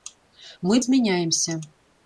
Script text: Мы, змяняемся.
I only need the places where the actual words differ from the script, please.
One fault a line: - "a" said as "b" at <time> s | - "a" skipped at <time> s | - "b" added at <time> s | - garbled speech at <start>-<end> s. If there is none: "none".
none